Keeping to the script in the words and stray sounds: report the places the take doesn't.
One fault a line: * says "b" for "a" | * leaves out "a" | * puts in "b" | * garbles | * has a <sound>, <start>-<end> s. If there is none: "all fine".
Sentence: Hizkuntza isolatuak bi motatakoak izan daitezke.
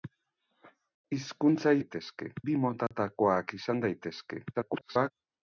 * says "daitezke" for "isolatuak"
* has a dropout, 2.9-2.9 s
* garbles